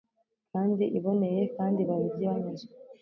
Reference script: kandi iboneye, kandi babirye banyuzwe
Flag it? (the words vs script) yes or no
no